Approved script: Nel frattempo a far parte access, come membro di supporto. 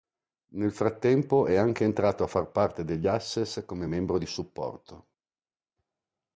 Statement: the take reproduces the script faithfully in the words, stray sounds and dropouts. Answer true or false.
false